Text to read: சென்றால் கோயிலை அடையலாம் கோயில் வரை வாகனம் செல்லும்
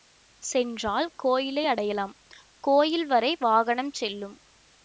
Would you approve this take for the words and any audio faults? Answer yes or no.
yes